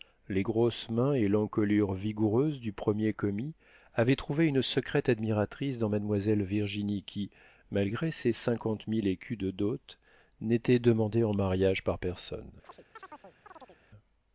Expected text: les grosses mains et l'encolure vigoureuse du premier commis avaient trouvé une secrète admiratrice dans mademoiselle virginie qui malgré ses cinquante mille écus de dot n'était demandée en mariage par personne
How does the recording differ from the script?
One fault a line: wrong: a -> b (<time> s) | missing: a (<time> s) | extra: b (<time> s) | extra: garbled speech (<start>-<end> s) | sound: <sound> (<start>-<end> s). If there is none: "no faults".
sound: chirp (12.6-13.8 s)